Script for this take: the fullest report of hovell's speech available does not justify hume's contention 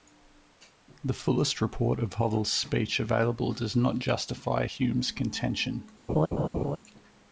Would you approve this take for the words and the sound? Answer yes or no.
no